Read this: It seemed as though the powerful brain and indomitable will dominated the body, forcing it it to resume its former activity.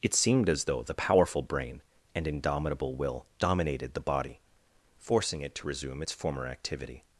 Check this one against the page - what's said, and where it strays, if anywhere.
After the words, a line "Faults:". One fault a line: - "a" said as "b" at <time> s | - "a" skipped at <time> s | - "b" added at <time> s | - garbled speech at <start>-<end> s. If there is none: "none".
It seemed as though the powerful brain and indomitable will dominated the body, forcing it to resume its former activity.
Faults:
- "it" skipped at 5.5 s